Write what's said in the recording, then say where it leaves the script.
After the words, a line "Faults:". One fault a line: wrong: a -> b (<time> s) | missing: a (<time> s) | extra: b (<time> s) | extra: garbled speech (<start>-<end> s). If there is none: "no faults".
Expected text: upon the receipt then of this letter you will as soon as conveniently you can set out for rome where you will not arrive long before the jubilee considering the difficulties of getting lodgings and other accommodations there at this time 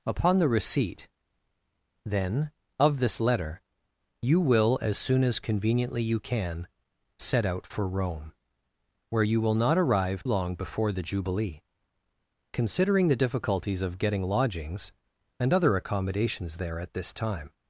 upon the receipt then of this letter you will as soon as conveniently you can set out for rome where you will not arrive long before the jubilee considering the difficulties of getting lodgings and other accommodations there at this time
Faults:
no faults